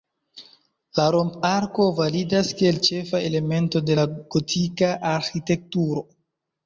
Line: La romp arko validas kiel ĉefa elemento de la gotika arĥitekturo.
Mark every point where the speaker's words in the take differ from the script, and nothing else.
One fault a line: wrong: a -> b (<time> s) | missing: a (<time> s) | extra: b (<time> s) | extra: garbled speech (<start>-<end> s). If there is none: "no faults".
no faults